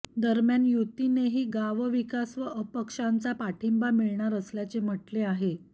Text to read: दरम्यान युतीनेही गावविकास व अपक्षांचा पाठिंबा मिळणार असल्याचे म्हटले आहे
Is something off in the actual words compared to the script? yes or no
no